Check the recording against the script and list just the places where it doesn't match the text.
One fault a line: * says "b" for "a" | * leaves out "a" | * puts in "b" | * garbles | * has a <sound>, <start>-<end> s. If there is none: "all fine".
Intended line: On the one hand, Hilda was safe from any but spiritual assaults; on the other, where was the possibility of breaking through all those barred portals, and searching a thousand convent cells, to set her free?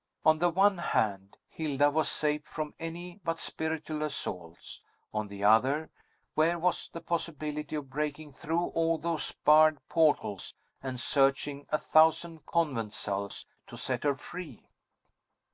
all fine